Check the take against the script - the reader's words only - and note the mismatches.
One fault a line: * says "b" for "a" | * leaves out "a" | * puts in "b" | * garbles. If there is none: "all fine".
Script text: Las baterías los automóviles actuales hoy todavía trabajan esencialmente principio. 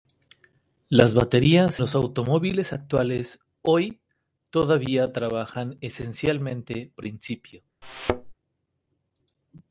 all fine